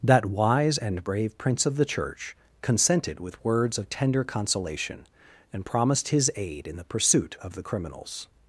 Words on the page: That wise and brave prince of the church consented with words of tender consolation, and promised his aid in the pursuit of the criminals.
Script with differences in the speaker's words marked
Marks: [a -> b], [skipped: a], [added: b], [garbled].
That wise and brave prince of the church consented with words of tender consolation, and promised his aid in the pursuit of the criminals.